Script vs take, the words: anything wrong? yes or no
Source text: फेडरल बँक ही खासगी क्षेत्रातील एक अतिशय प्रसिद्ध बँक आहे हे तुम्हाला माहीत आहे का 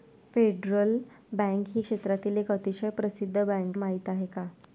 yes